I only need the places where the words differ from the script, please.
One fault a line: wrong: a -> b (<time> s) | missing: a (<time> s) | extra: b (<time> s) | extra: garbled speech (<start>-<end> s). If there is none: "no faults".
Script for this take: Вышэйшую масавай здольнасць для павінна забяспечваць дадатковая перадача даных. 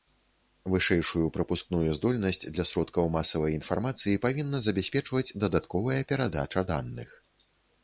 wrong: масавай -> прапускную (1.4 s)
extra: сродкаў масавай інфармацыі (2.7 s)